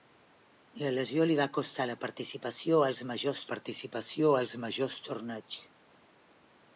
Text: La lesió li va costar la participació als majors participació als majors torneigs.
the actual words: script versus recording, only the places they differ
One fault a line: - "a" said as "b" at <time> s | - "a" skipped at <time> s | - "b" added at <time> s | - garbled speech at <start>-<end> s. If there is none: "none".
none